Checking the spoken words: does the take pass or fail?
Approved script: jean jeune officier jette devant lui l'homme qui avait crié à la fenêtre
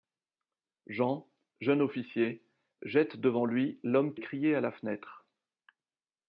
fail